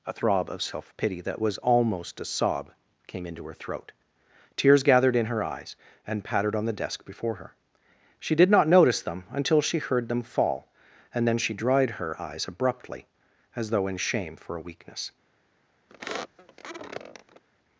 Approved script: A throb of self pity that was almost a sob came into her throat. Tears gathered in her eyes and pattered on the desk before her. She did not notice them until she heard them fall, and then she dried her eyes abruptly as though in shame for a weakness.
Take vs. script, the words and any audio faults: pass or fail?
fail